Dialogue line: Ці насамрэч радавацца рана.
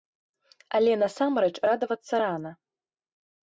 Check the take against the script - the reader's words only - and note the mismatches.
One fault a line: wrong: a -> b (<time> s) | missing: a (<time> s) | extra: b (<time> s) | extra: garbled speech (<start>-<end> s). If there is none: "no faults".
wrong: Ці -> Але (0.8 s)